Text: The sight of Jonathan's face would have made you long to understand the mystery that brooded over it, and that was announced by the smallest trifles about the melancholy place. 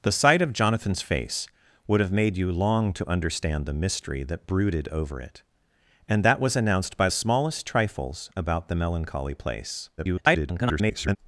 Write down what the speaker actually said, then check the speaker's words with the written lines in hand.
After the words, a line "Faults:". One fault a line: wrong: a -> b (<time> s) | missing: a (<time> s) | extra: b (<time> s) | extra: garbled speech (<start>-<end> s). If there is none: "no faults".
The sight of Jonathan's face would have made you long to understand the mystery that brooded over it, and that was announced by smallest trifles about the melancholy place. [garbled]
Faults:
missing: the (7.1 s)
extra: garbled speech (10.0-11.2 s)